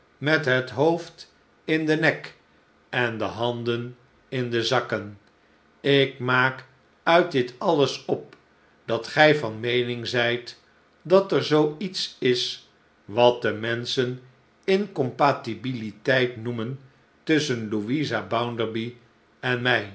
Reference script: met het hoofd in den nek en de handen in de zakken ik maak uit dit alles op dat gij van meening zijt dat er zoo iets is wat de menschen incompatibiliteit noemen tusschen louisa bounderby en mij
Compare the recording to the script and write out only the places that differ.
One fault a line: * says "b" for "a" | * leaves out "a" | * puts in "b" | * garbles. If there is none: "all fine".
all fine